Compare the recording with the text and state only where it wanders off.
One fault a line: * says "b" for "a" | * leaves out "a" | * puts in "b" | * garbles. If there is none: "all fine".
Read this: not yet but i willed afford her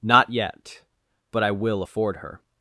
* says "will" for "willed"